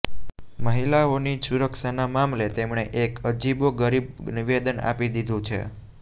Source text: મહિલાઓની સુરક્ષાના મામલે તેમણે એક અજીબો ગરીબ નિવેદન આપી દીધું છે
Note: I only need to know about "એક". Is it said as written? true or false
true